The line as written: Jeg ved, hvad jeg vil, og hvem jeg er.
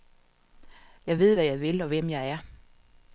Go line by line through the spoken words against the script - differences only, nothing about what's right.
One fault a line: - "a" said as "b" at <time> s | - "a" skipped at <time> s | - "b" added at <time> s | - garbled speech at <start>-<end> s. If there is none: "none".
none